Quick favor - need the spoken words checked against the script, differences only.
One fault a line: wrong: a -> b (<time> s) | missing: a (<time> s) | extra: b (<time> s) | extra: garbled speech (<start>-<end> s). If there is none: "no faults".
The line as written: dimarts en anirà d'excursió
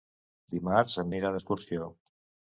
no faults